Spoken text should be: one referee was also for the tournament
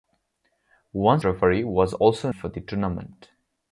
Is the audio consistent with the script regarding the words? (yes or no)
yes